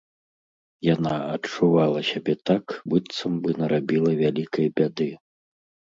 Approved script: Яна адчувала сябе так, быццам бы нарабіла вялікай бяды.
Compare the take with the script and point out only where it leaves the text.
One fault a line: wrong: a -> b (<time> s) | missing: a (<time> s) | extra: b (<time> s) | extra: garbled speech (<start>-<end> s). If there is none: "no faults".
no faults